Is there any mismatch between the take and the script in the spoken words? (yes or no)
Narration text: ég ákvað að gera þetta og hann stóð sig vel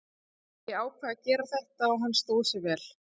no